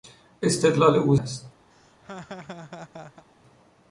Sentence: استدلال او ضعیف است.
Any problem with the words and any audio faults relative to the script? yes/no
yes